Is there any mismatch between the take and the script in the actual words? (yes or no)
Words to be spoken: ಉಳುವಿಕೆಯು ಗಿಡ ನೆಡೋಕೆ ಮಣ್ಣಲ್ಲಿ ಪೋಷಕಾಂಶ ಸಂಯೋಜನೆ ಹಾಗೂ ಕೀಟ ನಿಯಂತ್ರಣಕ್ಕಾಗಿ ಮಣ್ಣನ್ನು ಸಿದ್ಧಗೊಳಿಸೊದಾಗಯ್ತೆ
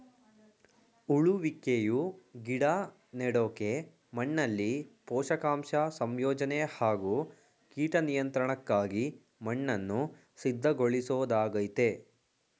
no